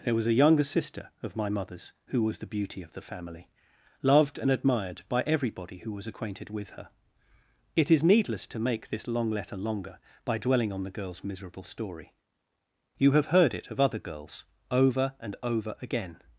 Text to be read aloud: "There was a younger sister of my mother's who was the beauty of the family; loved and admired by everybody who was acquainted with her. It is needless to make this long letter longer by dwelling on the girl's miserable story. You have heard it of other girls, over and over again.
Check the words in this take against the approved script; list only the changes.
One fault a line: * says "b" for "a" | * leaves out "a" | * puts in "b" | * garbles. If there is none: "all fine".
all fine